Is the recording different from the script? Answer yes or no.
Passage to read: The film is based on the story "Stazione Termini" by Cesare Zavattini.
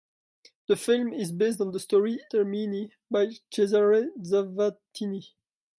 yes